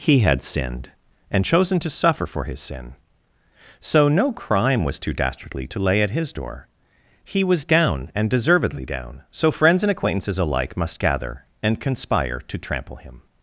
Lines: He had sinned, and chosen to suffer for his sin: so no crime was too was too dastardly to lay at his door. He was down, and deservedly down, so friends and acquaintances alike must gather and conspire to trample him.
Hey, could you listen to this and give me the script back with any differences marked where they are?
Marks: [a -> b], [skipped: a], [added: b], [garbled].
He had sinned, and chosen to suffer for his sin: so no crime was too [skipped: was too] dastardly to lay at his door. He was down, and deservedly down, so friends and acquaintances alike must gather and conspire to trample him.